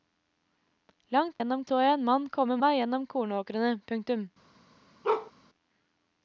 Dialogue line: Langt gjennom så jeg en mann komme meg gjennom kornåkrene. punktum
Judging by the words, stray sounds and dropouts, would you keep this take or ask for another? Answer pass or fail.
fail